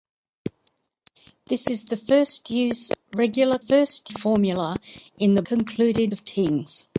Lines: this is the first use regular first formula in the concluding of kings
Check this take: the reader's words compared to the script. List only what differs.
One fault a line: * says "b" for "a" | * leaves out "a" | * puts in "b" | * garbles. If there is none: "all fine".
all fine